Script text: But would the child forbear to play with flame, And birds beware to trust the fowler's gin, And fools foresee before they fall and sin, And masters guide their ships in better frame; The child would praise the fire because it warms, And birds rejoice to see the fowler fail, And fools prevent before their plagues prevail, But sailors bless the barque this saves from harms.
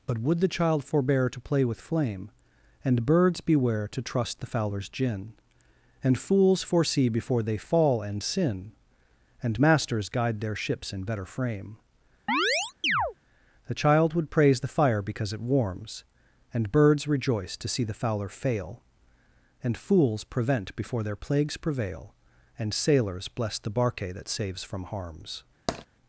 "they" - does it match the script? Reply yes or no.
yes